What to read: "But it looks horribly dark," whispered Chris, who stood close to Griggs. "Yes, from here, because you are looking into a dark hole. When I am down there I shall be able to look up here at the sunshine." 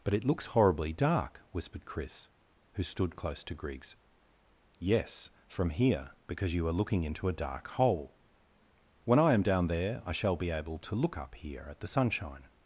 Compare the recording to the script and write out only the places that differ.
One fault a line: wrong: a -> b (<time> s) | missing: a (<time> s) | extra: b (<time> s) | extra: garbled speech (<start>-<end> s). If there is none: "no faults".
no faults